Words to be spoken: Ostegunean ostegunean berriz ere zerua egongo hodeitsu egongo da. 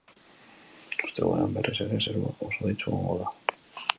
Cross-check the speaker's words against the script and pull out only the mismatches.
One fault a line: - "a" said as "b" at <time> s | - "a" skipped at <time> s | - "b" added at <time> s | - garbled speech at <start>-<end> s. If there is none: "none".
- "ostegunean" skipped at 1.5 s
- "egongo" said as "oso" at 2.5 s